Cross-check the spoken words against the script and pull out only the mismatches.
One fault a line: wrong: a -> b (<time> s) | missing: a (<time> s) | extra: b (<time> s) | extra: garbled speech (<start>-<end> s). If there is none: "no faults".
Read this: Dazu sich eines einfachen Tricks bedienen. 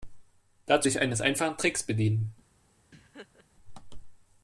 no faults